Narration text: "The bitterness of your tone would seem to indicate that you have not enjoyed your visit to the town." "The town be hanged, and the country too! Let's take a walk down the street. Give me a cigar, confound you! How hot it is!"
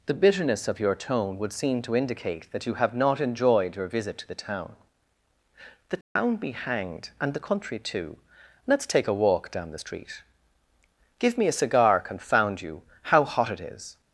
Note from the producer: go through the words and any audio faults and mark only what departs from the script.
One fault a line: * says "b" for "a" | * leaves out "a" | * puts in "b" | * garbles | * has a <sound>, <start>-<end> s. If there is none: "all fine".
* has a dropout, 6.0-6.2 s